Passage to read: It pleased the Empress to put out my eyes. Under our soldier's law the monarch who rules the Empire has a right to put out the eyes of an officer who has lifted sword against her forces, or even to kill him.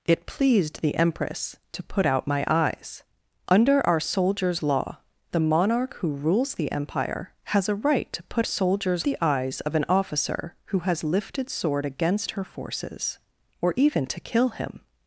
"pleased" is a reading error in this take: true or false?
false